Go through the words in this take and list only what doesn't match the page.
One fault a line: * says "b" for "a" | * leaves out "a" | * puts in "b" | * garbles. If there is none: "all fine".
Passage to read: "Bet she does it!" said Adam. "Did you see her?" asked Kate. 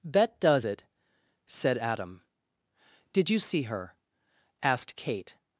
* leaves out "she"